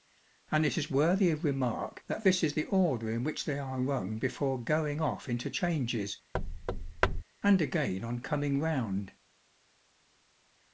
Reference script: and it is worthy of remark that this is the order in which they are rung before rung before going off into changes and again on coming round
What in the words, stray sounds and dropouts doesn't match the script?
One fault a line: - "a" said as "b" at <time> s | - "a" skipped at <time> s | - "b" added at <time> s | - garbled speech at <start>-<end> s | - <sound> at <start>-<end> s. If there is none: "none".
- "rung before" skipped at 4.6 s
- thud at 6.3-7.2 s